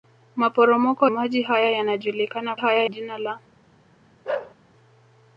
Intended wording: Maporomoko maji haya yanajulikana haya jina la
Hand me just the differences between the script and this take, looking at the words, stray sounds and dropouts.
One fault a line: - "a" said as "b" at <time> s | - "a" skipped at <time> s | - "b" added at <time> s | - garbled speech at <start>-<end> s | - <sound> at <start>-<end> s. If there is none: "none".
- bark at 4.2-4.5 s